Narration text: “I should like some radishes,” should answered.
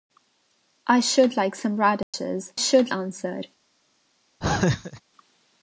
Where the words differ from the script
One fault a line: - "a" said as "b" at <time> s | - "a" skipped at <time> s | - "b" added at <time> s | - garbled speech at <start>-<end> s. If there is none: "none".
none